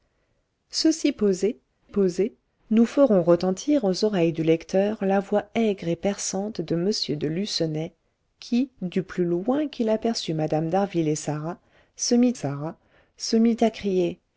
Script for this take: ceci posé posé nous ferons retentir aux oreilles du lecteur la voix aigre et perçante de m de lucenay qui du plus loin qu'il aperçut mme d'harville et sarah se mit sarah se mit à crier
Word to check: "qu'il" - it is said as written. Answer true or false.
true